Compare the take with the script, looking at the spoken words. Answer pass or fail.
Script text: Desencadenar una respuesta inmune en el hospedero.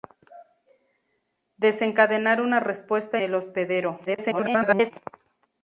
fail